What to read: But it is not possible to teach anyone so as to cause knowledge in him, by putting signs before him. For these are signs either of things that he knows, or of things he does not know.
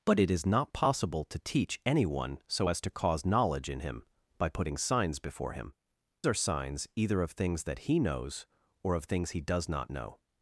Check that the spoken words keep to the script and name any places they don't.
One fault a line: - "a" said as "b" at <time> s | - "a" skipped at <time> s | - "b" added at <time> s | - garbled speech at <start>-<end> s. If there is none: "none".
- "For these" skipped at 5.7 s